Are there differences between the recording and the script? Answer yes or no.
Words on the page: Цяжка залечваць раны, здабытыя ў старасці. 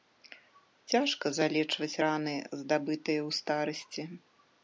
no